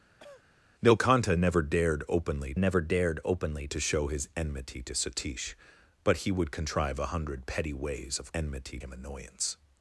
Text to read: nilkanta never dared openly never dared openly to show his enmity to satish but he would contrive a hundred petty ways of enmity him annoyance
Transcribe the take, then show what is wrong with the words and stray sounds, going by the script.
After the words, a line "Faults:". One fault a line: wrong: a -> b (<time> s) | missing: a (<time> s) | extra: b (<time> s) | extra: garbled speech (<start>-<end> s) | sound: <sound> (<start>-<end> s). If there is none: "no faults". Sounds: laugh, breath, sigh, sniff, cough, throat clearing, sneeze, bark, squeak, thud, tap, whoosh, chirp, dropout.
nilkanta never dared openly never dared openly to show his enmity to satish but he would contrive a hundred petty ways of enmity him annoyance
Faults:
sound: cough (0.2-0.4 s)